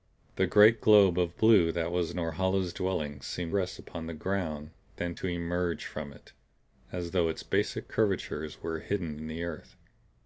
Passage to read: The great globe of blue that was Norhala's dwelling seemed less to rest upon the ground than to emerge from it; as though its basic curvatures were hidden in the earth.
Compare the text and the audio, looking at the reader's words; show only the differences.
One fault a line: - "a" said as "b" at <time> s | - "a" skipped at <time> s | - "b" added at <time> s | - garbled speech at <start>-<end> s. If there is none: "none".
- "less to" skipped at 3.5 s